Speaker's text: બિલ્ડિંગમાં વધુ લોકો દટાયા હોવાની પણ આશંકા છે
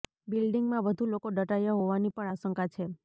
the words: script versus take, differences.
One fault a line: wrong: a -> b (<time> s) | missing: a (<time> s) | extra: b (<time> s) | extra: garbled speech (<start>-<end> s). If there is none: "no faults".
no faults